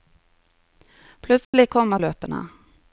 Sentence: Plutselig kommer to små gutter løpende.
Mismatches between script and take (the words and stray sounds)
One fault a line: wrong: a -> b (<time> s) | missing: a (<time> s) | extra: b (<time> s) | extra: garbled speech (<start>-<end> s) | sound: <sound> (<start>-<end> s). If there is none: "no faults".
sound: dropout (1.4-1.5 s)
missing: to små gutter (2.0 s)